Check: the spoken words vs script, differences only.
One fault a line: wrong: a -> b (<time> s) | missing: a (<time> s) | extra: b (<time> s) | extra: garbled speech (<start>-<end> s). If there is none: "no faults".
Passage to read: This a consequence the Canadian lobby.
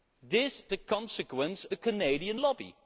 no faults